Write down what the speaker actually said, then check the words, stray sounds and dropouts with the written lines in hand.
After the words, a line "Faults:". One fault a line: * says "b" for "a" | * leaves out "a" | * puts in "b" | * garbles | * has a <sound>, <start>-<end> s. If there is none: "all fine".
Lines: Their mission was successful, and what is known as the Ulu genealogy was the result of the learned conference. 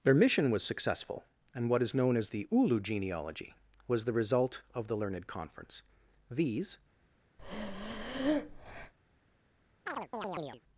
Their mission was successful, and what is known as the Ulu genealogy was the result of the learned conference. These
Faults:
* puts in "These"
* has a breath, 7.4-8.9 s
* has a chirp, 9.9-10.6 s